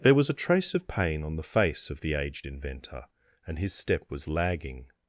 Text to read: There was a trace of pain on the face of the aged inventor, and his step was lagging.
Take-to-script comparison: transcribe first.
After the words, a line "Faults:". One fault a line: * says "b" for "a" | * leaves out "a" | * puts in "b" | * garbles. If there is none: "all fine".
There was a trace of pain on the face of the aged inventor, and his step was lagging.
Faults:
all fine